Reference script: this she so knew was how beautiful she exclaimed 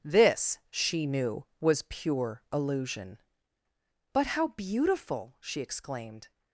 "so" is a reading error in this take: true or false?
true